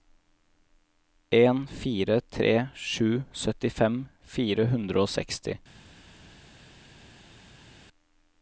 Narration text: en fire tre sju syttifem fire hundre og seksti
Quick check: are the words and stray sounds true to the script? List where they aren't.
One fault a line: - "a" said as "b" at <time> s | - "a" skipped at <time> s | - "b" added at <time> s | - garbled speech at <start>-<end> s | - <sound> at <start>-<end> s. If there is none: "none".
none